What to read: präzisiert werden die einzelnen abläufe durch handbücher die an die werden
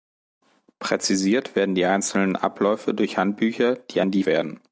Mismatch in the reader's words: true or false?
false